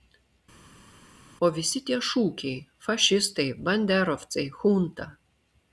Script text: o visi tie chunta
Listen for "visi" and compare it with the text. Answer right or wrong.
right